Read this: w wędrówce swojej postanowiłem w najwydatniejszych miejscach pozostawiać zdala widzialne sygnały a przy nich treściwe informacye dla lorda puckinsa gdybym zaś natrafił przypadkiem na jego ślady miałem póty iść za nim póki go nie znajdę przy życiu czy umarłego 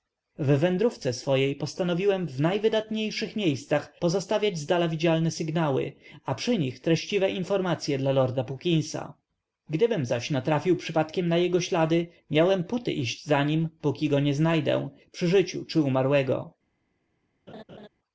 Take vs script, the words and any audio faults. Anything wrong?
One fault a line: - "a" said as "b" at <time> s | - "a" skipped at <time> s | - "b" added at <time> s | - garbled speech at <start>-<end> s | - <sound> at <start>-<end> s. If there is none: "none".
- laugh at 17.5-17.9 s